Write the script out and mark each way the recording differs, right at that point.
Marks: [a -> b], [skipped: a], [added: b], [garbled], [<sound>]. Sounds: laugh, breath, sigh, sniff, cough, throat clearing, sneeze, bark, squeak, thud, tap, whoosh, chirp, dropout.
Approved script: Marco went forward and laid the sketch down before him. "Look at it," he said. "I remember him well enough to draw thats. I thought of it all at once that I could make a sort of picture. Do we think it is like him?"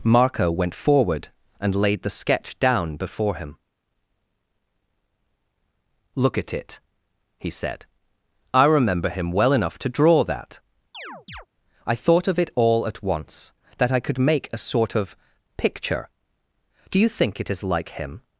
Marco went forward and laid the sketch down before him. "Look at it," he said. "I remember him well enough to draw [thats. -> that] [chirp] I thought of it all at once that I could make a sort of picture. Do [we -> you] think it is like him?"